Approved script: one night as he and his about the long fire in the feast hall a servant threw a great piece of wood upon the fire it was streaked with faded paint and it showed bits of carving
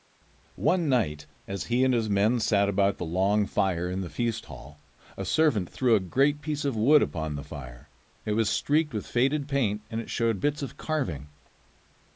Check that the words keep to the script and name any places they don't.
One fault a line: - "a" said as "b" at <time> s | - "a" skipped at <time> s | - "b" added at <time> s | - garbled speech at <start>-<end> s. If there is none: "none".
- "men sat" added at 2.1 s